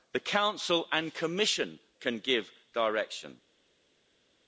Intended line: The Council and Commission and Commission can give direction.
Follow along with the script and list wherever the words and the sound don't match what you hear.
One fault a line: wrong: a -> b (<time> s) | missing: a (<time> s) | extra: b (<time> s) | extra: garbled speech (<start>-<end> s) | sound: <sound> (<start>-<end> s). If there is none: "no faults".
missing: and Commission (1.8 s)